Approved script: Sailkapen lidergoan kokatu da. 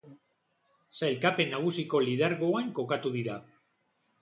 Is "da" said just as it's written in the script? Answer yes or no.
no